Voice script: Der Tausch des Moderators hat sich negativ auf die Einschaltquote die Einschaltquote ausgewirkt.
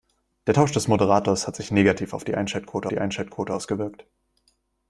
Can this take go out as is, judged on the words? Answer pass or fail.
pass